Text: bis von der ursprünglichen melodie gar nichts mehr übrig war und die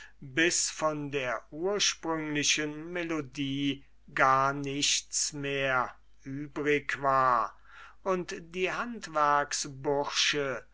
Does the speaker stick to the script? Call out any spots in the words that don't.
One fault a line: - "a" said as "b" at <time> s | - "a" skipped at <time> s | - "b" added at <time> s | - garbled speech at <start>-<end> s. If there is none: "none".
none